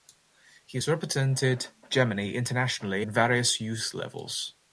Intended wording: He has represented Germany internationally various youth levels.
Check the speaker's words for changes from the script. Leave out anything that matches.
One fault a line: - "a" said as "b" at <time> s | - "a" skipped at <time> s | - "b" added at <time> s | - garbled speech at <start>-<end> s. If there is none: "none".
none